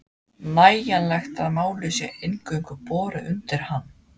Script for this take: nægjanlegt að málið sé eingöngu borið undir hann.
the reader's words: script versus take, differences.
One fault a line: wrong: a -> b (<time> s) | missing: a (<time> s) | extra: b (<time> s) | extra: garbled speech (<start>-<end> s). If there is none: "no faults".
no faults